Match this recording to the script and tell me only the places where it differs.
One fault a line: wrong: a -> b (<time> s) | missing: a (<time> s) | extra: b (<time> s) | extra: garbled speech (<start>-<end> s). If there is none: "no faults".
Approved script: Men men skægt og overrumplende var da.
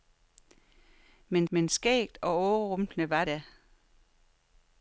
no faults